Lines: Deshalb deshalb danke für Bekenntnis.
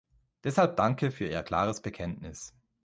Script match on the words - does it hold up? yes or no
no